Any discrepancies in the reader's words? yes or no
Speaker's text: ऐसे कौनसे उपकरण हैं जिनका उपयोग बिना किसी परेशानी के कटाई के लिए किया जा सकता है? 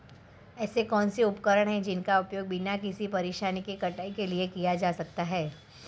no